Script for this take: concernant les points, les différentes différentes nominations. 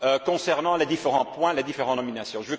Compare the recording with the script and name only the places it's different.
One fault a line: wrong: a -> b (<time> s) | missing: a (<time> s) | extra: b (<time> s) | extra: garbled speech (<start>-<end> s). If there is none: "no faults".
extra: différents (0.8 s)
missing: différentes (2.0 s)